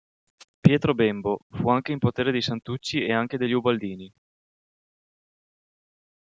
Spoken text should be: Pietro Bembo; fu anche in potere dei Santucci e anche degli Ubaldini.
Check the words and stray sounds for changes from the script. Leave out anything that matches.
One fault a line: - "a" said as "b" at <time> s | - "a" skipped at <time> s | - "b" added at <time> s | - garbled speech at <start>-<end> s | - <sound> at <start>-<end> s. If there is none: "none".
none